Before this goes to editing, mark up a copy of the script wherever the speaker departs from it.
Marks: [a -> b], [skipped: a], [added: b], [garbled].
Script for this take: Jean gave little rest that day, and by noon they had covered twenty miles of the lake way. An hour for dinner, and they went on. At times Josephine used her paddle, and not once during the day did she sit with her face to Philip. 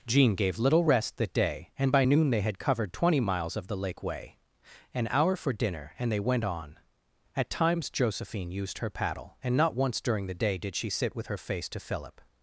Jean gave little rest that day, and by noon they had covered twenty miles of the lake way. An hour for dinner, and they went on. At times Josephine used her paddle, and not once during the day did she sit with her face to Philip.